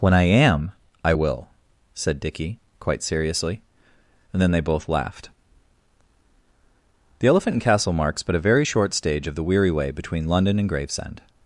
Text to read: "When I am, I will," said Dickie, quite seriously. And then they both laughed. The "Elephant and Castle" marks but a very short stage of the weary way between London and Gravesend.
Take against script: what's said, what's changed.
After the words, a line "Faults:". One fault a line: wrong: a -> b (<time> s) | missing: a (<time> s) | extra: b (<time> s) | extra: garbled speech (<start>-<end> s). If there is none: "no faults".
"When I am, I will," said Dickie, quite seriously. And then they both laughed. The "Elephant and Castle" marks but a very short stage of the weary way between London and Gravesend.
Faults:
no faults